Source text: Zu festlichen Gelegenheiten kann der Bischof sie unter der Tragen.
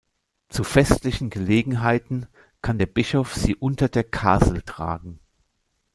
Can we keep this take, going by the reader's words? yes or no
no